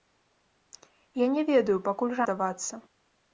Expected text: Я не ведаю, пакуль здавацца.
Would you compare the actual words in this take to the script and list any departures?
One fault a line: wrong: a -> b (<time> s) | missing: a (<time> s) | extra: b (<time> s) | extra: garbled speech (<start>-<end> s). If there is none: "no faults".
no faults